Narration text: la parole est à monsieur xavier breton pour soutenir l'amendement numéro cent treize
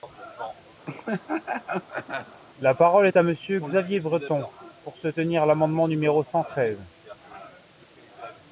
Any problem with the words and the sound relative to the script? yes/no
yes